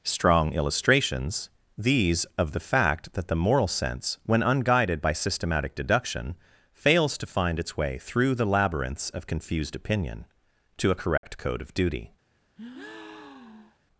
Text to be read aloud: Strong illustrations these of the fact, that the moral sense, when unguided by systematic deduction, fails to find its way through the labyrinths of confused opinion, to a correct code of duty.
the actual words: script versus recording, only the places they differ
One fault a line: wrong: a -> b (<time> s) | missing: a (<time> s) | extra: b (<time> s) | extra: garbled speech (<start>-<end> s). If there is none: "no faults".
no faults